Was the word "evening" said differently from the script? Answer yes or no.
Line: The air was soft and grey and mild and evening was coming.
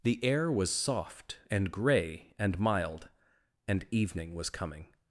no